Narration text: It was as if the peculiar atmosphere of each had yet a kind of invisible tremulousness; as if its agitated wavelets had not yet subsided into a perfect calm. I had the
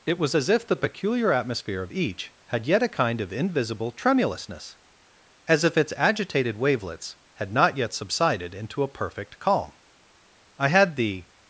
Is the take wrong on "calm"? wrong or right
right